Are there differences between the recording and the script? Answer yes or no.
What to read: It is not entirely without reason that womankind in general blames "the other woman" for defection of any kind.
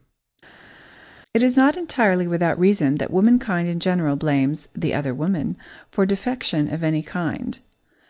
no